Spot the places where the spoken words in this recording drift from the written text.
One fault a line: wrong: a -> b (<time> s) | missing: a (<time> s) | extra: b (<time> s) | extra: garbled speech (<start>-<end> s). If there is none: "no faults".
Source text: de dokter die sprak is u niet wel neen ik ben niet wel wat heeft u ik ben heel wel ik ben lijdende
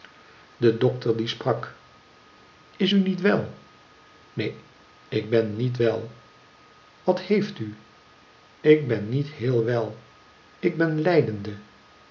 extra: niet (9.1 s)